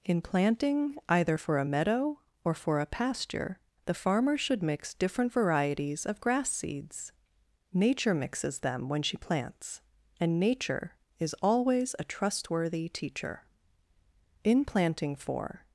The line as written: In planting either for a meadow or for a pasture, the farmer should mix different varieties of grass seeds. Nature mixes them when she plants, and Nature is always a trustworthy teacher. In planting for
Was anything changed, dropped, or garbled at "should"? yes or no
no